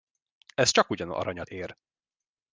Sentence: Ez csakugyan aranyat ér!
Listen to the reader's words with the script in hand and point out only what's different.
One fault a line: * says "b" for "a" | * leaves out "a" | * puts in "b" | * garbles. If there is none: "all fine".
all fine